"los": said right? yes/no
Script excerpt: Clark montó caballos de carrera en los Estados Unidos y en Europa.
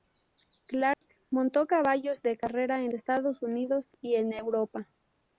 no